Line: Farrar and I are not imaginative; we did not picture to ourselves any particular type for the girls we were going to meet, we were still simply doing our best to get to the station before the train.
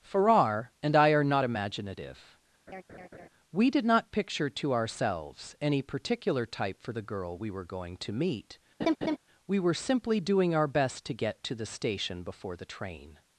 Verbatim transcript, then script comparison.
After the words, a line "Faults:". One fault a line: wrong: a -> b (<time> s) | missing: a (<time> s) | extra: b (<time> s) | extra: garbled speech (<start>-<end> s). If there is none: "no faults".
Farrar and I are not imaginative; we did not picture to ourselves any particular type for the girl we were going to meet, we were simply doing our best to get to the station before the train.
Faults:
wrong: girls -> girl (7.0 s)
missing: still (9.7 s)